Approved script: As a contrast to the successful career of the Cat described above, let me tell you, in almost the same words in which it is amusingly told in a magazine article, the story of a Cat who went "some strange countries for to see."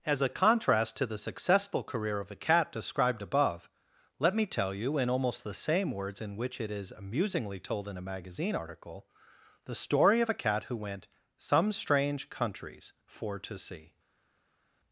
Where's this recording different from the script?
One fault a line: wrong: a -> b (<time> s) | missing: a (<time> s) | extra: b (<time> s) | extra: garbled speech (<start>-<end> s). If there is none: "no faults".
wrong: the -> a (2.3 s)